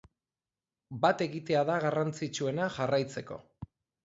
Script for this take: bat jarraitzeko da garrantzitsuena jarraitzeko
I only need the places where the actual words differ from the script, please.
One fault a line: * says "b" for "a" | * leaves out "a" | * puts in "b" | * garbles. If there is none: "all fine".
* says "egitea" for "jarraitzeko"